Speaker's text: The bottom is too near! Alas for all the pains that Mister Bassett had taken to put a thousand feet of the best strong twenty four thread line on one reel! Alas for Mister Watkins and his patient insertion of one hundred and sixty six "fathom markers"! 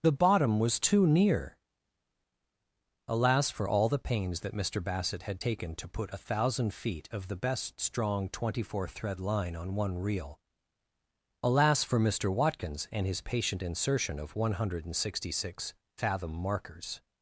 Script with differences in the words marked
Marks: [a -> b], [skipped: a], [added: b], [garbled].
The bottom [is -> was] too near! Alas for all the pains that Mister Bassett had taken to put a thousand feet of the best strong twenty four thread line on one reel! Alas for Mister Watkins and his patient insertion of one hundred and sixty six "fathom markers"!